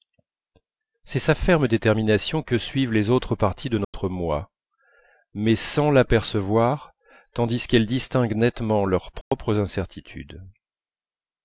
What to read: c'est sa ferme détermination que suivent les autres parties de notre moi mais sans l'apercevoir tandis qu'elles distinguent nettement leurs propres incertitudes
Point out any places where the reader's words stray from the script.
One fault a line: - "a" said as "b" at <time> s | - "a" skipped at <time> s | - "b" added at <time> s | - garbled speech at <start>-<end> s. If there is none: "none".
none